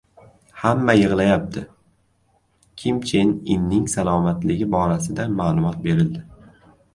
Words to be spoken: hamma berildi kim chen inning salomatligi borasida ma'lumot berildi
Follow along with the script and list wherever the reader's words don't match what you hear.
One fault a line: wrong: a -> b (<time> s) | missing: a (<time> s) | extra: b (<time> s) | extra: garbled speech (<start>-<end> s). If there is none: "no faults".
wrong: berildi -> yig‘layapti (1.0 s)